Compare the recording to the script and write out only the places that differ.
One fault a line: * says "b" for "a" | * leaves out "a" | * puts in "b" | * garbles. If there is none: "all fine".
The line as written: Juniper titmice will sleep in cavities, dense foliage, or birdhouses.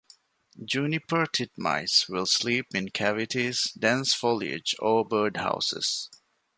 all fine